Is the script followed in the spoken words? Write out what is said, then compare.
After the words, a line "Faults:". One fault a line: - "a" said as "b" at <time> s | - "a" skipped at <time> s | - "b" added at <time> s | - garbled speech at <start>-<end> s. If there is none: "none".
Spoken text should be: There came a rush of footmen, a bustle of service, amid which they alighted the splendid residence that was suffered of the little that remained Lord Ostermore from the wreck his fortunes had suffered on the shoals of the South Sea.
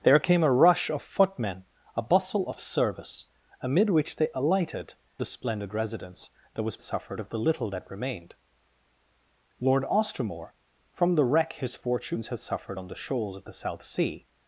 There came a rush of footmen, a bustle of service, amid which they alighted the splendid residence that was suffered of the little that remained Lord Ostermore from the wreck his fortunes had suffered on the shoals of the South Sea.
Faults:
none